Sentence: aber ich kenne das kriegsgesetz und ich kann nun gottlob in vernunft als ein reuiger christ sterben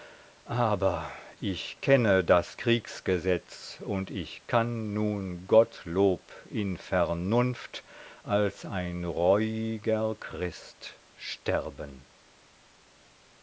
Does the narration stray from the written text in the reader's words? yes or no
no